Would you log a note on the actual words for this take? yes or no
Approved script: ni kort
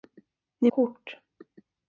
no